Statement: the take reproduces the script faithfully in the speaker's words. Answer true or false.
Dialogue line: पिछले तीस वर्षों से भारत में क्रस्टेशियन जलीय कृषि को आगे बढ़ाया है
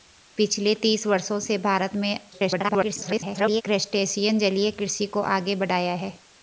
false